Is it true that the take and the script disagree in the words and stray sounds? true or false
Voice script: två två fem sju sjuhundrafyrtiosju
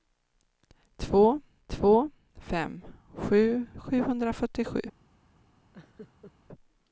true